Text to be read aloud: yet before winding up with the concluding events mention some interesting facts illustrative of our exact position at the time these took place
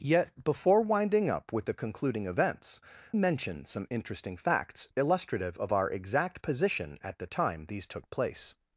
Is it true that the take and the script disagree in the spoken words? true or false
false